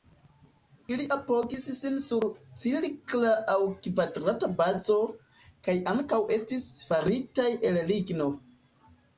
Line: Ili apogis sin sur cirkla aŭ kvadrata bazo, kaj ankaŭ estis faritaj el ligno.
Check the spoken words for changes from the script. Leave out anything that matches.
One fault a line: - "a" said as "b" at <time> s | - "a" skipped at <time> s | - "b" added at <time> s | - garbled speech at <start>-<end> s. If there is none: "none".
none